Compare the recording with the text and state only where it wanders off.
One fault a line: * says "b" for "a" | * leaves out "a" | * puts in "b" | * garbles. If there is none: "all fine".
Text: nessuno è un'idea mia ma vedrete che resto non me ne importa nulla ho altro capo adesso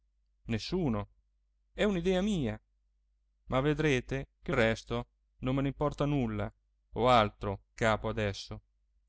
all fine